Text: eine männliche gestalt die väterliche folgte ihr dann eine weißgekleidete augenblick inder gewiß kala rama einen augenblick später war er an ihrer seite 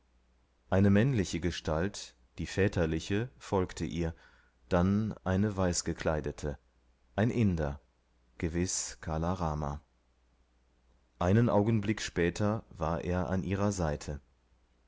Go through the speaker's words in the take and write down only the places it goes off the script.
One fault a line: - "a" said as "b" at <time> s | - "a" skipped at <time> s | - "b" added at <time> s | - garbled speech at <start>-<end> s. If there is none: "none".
- "augenblick" said as "ein" at 7.2 s